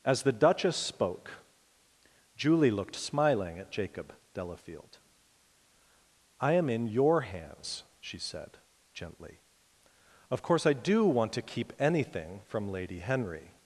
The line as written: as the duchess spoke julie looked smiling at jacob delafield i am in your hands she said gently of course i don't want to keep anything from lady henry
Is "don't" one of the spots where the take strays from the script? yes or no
yes